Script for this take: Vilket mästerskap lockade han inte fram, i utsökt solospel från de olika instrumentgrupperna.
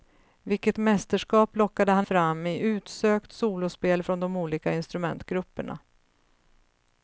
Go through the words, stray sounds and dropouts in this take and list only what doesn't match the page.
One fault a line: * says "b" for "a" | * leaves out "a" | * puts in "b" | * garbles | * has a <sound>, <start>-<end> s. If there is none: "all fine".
* leaves out "inte"